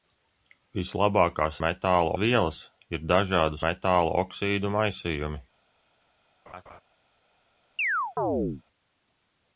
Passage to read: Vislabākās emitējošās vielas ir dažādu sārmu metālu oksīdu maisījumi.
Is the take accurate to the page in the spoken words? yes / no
no